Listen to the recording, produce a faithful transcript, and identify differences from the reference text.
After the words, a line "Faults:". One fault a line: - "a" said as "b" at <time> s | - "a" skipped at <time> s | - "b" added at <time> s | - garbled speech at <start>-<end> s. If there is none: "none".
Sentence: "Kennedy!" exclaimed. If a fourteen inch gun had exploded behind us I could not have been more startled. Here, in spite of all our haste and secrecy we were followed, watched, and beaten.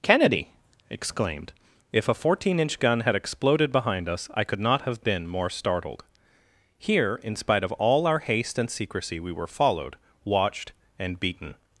"Kennedy!" exclaimed. If a fourteen inch gun had exploded behind us I could not have been more startled. Here, in spite of all our haste and secrecy we were followed, watched, and beaten.
Faults:
none